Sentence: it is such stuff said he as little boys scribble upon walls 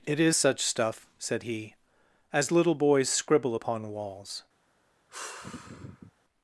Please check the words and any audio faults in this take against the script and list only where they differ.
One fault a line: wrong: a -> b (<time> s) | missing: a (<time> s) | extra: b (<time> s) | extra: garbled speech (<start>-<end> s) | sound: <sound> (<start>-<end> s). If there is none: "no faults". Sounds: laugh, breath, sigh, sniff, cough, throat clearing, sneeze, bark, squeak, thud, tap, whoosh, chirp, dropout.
sound: sigh (5.1-6.1 s)